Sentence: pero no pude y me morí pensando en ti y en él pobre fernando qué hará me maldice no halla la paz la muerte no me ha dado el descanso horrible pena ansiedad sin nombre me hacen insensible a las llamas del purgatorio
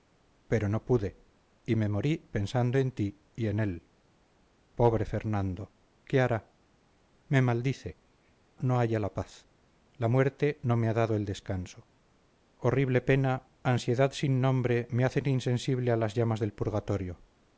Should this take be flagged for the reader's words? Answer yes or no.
no